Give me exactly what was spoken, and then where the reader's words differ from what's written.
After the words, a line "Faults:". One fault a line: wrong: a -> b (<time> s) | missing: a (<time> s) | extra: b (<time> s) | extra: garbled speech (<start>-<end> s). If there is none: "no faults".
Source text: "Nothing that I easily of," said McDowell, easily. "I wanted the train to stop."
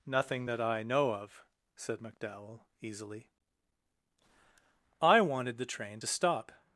"Nothing that I know of," said McDowell, easily. "I wanted the train to stop."
Faults:
wrong: easily -> know (0.8 s)